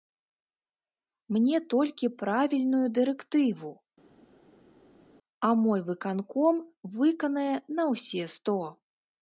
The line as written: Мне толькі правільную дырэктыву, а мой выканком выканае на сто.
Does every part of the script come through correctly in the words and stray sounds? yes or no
no